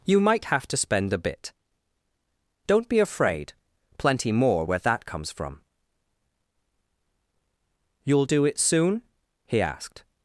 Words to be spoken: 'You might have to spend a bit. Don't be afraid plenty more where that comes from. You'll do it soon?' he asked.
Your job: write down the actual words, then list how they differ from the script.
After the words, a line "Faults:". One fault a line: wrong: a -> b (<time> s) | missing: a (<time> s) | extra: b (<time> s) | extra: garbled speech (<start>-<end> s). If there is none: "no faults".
'You might have to spend a bit. Don't be afraid plenty more where that comes from. You'll do it soon?' he asked.
Faults:
no faults